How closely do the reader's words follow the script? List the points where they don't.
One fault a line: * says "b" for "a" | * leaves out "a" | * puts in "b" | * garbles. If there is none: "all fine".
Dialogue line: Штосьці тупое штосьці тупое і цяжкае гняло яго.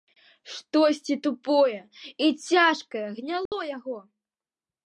* leaves out "штосьці тупое"